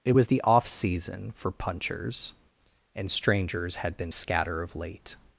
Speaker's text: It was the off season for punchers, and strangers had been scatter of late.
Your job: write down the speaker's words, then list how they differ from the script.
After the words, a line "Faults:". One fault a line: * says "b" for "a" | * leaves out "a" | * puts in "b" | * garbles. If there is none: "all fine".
It was the off season for punchers, and strangers had been scatter of late.
Faults:
all fine